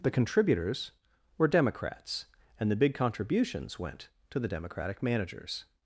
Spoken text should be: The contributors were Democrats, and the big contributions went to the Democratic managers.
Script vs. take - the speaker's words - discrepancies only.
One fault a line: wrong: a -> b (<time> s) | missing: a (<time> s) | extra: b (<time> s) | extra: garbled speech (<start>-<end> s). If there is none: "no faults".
no faults